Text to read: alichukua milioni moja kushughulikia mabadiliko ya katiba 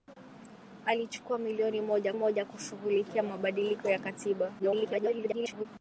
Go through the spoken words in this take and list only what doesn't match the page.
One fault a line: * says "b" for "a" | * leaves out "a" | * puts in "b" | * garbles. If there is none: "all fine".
* puts in "moja"
* garbles